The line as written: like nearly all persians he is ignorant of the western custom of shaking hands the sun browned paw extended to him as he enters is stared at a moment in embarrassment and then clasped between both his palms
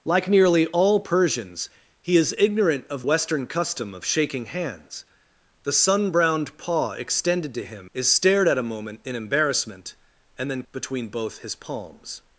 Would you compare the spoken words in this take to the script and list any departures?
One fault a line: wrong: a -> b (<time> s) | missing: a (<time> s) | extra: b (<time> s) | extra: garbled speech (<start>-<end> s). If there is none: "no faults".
missing: the (3.0 s)
missing: as he enters (7.9 s)
missing: clasped (10.6 s)